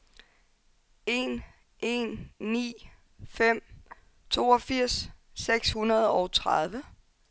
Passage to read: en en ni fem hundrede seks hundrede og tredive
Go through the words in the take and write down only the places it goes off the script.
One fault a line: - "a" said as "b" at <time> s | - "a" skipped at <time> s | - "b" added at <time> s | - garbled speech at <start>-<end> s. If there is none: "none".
- "hundrede" said as "toogfirs" at 4.3 s